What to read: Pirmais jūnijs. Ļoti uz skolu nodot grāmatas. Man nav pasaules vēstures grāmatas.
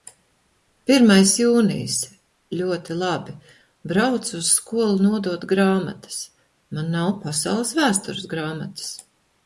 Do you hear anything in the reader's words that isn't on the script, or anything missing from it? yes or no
yes